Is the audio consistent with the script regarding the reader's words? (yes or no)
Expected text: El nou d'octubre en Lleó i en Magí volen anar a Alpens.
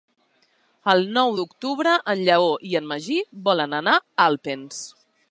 yes